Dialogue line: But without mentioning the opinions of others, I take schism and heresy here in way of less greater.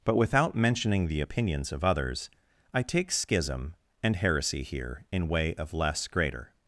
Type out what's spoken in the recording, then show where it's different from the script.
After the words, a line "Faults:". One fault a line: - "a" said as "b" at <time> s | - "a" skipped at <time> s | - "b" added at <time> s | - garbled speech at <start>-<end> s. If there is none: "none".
But without mentioning the opinions of others, I take schism and heresy here in way of less greater.
Faults:
none